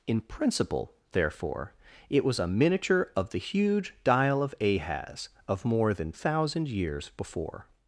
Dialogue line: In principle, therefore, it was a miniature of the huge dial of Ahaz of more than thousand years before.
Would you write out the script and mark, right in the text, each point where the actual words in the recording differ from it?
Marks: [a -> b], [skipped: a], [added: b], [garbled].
In principle, therefore, it was a miniature of the huge dial of Ahaz of more than thousand years before.